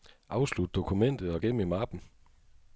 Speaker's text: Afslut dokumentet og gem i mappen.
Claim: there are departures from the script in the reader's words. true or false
false